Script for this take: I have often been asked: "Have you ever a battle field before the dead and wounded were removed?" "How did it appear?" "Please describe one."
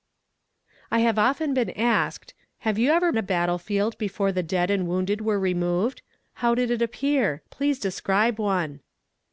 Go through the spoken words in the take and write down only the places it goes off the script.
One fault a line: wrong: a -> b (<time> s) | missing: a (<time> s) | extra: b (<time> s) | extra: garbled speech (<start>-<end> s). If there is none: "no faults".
no faults